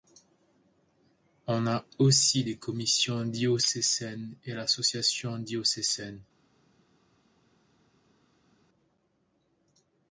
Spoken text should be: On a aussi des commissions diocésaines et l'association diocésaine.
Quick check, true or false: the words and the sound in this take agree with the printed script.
true